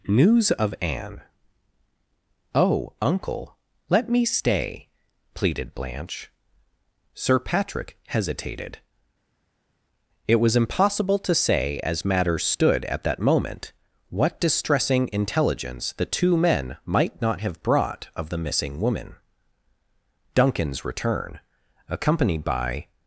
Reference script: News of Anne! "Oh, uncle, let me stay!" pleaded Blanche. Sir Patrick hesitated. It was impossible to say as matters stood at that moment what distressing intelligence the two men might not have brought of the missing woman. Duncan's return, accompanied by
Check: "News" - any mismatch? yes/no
no